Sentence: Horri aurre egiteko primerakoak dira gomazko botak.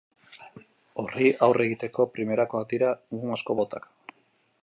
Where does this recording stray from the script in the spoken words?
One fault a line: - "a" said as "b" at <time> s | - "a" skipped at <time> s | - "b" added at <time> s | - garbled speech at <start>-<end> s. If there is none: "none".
none